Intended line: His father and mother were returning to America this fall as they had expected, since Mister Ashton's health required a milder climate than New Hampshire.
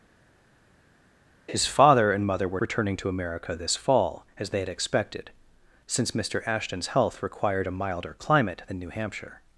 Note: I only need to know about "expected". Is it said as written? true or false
true